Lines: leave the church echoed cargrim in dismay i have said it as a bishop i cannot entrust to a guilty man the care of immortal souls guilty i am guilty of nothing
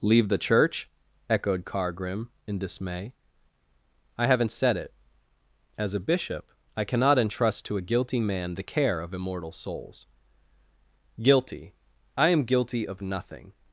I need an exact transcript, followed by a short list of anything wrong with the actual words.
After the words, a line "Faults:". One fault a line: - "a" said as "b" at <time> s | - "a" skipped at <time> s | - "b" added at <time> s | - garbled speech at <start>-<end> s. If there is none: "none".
leave the church echoed cargrim in dismay i haven't said it as a bishop i cannot entrust to a guilty man the care of immortal souls guilty i am guilty of nothing
Faults:
- "have" said as "haven't" at 4.3 s